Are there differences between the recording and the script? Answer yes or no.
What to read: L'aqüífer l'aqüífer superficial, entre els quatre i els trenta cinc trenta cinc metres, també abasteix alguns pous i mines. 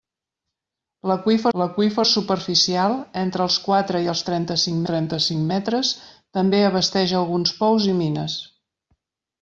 no